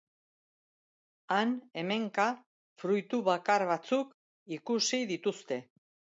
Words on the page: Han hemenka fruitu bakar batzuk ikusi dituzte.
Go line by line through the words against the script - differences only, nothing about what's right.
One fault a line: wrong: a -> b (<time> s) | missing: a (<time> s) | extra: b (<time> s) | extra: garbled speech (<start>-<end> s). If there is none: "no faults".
no faults